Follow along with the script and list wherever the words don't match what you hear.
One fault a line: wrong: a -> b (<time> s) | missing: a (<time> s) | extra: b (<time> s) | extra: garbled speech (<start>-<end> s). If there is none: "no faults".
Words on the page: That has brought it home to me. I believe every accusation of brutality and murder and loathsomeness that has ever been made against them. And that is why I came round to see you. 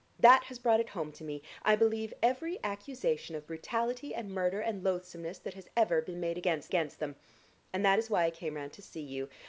extra: against (6.7 s)